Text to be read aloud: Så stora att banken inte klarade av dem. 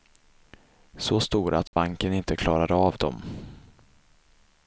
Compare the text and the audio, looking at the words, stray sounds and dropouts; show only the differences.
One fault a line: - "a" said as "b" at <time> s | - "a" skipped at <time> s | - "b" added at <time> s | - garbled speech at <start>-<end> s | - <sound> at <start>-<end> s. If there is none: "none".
- dropout at 1.7-1.7 s